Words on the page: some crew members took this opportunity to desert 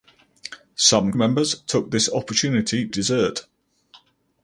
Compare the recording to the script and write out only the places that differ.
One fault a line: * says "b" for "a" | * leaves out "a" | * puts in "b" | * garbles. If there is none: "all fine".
* leaves out "crew"
* leaves out "to"